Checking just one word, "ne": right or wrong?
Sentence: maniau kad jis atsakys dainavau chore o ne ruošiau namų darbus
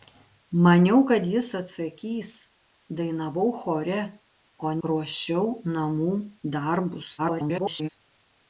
wrong